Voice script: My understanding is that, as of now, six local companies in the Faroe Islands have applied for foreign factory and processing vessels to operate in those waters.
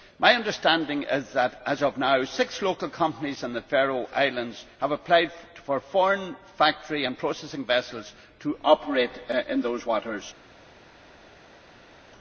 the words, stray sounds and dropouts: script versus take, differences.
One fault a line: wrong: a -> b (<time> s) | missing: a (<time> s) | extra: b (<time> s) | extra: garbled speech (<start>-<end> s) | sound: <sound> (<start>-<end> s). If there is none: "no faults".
no faults